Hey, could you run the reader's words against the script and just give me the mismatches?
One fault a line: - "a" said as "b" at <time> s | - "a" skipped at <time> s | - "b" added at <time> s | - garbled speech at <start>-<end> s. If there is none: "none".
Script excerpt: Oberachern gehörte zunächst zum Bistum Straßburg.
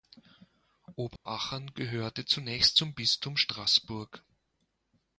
none